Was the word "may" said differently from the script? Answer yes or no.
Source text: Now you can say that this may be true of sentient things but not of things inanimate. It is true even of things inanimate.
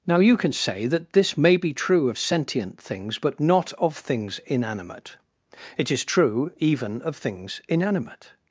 no